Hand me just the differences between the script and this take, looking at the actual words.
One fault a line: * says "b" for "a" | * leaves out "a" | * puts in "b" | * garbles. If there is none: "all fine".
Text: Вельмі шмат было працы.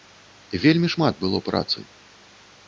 all fine